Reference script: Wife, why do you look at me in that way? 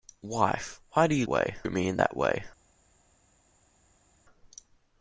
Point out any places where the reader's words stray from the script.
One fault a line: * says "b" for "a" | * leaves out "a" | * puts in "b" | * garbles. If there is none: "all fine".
* says "way" for "look"